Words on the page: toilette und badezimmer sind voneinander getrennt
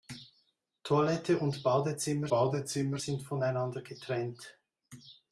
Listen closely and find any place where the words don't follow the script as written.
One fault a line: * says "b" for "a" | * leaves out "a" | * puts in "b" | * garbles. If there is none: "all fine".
* puts in "badezimmer"